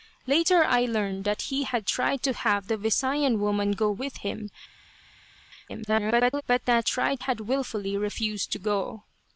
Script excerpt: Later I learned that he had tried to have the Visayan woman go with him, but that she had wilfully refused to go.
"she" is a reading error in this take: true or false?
true